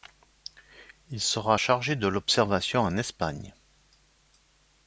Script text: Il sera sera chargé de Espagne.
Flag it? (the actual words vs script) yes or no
yes